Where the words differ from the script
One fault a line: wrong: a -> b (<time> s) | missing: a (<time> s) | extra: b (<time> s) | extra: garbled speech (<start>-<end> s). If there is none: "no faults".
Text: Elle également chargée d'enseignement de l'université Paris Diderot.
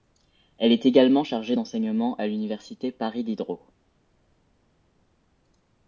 extra: est (0.7 s)
wrong: de -> à (2.2 s)